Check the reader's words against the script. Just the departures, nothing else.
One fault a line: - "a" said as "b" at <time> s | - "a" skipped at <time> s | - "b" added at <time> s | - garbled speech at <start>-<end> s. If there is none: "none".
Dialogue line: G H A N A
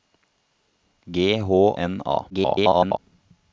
- "A" skipped at 1.4 s
- garbled speech at 2.3-3.0 s